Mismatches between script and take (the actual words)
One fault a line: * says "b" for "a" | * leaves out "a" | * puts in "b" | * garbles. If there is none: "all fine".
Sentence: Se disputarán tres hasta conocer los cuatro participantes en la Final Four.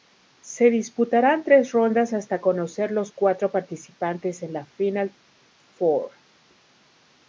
* puts in "rondas"